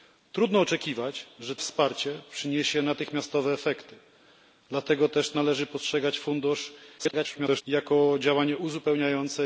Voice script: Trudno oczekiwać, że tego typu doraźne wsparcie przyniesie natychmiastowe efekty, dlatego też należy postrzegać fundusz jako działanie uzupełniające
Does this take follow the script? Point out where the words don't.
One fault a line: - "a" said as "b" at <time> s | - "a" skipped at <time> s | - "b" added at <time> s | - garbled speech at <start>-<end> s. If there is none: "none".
- "tego typu doraźne" skipped at 1.6 s
- garbled speech at 7.0-7.6 s